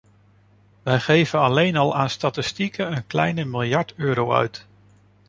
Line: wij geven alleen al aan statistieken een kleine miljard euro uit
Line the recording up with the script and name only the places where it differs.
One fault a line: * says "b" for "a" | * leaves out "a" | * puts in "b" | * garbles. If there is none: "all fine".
all fine